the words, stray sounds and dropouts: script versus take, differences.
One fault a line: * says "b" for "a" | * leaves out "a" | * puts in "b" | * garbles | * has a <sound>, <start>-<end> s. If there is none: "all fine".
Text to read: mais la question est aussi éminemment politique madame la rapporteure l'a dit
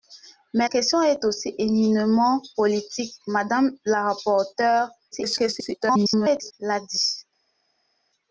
* leaves out "la"
* garbles